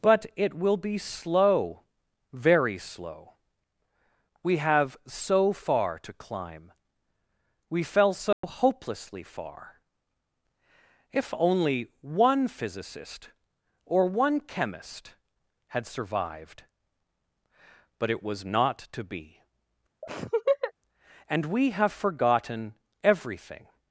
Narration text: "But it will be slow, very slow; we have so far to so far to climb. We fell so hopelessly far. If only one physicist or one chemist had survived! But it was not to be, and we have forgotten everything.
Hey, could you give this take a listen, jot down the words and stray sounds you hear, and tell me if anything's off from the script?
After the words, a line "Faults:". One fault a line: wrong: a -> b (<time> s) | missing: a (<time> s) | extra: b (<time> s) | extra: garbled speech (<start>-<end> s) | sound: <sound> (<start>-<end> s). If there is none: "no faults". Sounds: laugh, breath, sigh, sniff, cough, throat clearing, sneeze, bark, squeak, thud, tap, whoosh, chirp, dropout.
"But it will be slow, very slow; we have so far to climb. We fell so hopelessly far. If only one physicist or one chemist had survived! But it was not to be, and we have forgotten everything.
Faults:
missing: so far to (6.1 s)
sound: dropout (8.3-8.4 s)
sound: laugh (20.0-20.7 s)